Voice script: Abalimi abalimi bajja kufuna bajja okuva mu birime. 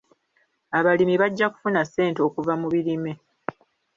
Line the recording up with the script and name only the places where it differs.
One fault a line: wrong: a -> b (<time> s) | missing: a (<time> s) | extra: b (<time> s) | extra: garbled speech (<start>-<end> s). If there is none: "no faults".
missing: abalimi (1.1 s)
wrong: bajja -> ssente (1.9 s)